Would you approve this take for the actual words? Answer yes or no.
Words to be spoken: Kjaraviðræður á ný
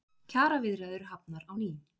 no